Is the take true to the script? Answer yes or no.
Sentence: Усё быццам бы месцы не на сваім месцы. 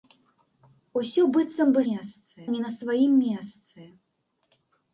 yes